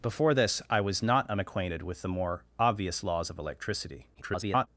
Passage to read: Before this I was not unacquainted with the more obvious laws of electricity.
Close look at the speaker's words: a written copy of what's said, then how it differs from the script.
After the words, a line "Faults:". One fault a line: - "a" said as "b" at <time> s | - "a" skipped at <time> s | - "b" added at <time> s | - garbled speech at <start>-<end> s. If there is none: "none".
Before this I was not unacquainted with the more obvious laws of electricity. [garbled]
Faults:
- garbled speech at 4.1-4.7 s